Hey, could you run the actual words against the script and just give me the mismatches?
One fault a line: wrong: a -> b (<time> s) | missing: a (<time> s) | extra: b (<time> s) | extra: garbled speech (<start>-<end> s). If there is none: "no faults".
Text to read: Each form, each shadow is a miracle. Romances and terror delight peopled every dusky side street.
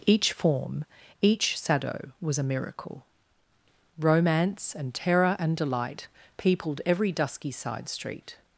wrong: is -> was (2.2 s)
wrong: Romances -> Romance (4.0 s)
extra: and (5.4 s)